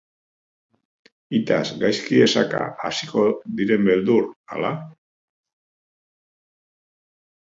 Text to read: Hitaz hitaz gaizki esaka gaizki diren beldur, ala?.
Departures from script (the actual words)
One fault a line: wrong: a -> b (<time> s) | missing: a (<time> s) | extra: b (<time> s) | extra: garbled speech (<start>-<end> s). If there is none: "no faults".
missing: hitaz (1.6 s)
wrong: gaizki -> hasiko (2.9 s)